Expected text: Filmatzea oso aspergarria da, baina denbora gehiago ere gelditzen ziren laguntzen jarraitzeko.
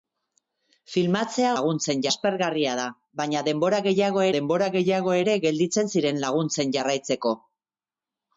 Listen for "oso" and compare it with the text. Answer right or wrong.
wrong